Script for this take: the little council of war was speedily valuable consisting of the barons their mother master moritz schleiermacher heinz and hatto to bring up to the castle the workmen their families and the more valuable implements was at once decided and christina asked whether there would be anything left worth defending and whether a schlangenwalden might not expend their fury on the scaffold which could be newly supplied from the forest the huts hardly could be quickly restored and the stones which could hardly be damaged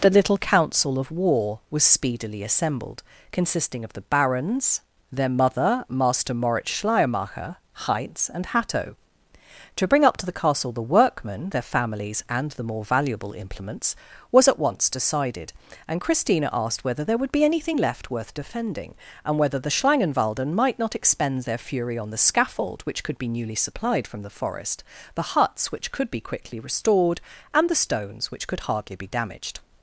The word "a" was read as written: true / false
false